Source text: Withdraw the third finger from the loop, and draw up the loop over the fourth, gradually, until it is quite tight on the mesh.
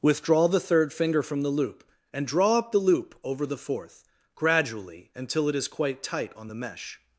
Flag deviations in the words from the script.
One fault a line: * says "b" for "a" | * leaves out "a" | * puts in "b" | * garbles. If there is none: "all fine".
all fine